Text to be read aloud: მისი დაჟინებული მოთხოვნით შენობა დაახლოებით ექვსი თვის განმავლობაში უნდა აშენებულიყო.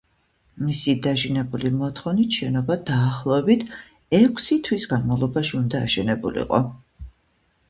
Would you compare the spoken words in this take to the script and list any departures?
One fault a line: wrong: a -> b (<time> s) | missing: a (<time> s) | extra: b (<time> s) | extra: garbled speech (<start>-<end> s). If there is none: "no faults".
no faults